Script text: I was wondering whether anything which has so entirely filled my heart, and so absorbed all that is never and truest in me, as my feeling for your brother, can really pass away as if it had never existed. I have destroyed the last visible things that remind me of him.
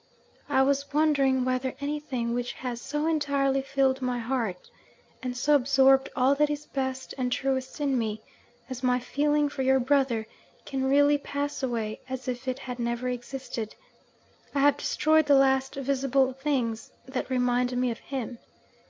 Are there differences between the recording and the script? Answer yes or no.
yes